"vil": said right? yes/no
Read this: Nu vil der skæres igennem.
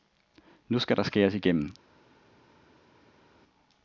no